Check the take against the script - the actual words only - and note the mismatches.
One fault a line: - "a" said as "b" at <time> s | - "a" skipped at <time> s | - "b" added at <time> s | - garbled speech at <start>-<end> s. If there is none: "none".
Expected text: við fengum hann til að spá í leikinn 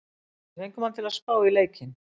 none